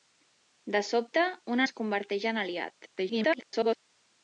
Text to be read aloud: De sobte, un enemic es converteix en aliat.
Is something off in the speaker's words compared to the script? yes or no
yes